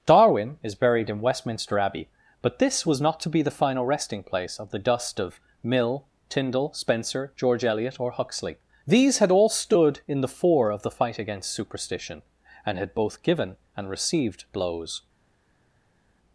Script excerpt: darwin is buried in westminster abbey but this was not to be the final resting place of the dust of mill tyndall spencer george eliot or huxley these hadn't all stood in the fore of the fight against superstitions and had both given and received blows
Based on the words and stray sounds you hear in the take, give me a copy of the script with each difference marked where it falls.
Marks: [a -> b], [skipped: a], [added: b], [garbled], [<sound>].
darwin is buried in westminster abbey but this was not to be the final resting place of the dust of mill tyndall spencer george eliot or huxley these [hadn't -> had] all stood in the fore of the fight against [superstitions -> superstition] and had both given and received blows